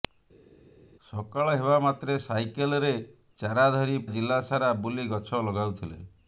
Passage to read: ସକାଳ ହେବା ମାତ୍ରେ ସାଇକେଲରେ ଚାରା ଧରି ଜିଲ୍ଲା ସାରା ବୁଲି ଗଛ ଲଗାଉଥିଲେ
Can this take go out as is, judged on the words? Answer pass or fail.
pass